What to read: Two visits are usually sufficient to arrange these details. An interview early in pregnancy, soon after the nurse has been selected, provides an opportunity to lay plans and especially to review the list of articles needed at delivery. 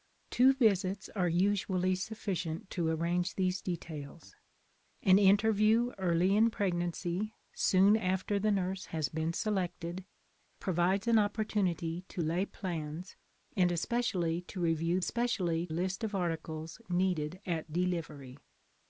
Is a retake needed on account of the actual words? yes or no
yes